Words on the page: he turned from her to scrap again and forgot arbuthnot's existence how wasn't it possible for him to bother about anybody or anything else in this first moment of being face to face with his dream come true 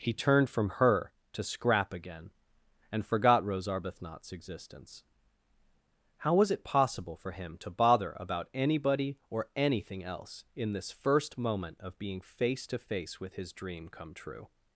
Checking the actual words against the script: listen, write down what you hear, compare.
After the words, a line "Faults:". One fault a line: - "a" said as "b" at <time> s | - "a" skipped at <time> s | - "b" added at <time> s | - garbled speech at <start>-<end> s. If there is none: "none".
he turned from her to scrap again and forgot rose arbuthnot's existence how was it possible for him to bother about anybody or anything else in this first moment of being face to face with his dream come true
Faults:
- "rose" added at 3.4 s
- "wasn't" said as "was" at 6.3 s